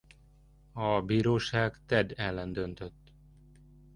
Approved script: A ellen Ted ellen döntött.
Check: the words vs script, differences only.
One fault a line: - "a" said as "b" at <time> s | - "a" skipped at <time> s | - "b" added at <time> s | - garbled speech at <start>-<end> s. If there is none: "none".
- "ellen" said as "bíróság" at 1.0 s